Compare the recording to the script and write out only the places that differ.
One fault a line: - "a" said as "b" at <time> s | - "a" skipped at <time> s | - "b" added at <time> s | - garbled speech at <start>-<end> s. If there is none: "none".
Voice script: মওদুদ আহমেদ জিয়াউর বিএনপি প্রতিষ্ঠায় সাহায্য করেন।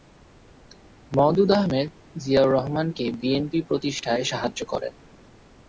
- "রহমানকে" added at 2.5 s